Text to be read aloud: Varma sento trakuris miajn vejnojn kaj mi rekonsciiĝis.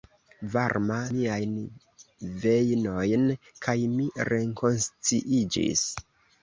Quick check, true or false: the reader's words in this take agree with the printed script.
false